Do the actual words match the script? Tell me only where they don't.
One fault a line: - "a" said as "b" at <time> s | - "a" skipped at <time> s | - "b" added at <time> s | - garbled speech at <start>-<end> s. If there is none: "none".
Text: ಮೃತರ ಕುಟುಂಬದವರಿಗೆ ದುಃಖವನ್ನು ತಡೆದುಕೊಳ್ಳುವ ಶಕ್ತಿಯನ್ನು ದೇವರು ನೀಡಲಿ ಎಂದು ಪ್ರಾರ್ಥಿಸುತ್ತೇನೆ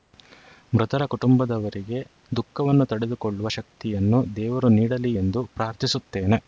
none